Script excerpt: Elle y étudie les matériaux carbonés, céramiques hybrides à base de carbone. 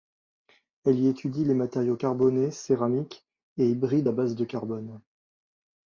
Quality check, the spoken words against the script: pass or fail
fail